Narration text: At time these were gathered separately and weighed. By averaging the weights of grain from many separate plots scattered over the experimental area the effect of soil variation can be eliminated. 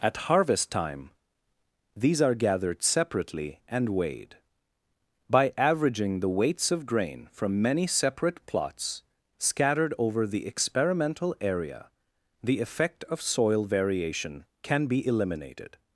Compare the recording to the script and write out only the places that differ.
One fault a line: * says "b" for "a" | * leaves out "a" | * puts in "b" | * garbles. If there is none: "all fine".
* puts in "harvest"
* says "are" for "were"